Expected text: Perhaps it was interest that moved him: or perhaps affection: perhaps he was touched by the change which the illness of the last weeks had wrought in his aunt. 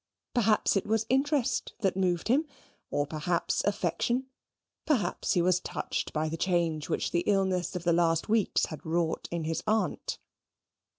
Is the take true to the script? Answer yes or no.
yes